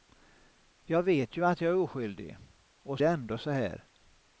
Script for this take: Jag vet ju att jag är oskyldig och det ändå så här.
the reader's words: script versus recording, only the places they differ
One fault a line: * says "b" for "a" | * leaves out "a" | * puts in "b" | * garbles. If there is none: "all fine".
all fine